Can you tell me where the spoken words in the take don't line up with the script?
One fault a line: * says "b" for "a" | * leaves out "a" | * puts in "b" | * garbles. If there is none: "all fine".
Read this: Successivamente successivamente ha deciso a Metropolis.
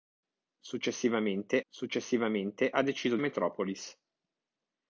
all fine